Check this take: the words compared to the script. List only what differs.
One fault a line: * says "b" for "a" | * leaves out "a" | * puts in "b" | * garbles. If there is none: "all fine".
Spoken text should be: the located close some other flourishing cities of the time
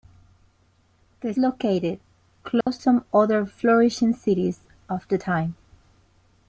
all fine